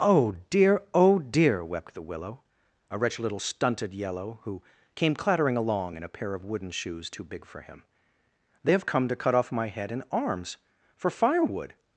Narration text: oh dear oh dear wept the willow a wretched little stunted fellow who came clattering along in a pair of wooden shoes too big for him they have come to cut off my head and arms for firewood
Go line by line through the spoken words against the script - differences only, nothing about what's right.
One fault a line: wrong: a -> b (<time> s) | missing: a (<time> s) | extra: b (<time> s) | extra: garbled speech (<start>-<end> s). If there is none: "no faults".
wrong: fellow -> yellow (3.9 s)